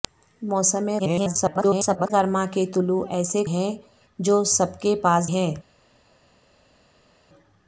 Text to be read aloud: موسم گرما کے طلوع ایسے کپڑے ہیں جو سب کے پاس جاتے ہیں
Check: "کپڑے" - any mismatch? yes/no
yes